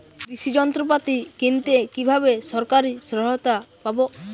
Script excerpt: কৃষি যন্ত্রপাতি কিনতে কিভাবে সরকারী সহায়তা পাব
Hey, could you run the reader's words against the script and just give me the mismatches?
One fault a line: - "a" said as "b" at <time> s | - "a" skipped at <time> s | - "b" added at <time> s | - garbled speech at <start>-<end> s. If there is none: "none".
none